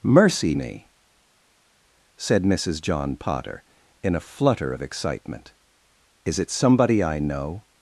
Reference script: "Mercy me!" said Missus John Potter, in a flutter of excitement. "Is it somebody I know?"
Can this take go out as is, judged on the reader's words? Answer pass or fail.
pass